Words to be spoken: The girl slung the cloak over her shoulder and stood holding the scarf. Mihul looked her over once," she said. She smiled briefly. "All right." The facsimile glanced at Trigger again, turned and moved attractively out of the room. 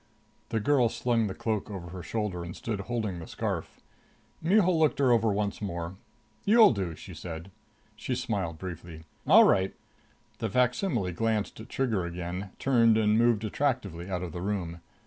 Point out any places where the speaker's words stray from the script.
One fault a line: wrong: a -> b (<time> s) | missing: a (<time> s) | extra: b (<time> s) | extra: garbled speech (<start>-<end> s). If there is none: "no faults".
extra: more You'll do (5.6 s)